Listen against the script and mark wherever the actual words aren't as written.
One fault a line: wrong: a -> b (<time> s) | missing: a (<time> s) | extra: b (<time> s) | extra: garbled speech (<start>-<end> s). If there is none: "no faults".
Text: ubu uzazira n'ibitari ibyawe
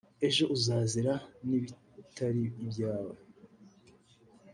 wrong: ubu -> ejo (0.3 s)